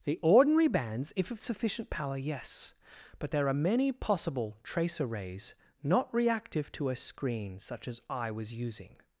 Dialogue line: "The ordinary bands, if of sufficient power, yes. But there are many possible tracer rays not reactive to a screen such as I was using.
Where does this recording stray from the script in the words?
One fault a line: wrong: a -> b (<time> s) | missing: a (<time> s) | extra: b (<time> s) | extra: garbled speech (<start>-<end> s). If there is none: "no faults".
no faults